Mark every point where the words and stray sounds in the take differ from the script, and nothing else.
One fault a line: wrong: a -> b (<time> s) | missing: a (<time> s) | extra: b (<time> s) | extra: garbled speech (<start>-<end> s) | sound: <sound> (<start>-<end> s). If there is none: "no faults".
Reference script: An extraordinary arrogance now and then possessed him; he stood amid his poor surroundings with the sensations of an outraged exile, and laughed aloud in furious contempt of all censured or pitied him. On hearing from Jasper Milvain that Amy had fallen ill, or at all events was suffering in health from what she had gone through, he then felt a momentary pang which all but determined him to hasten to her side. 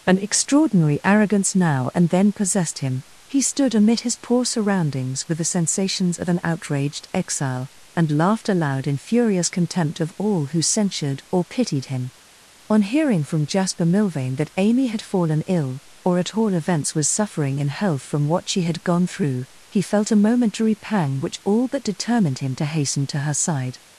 extra: who (10.5 s)
missing: then (19.8 s)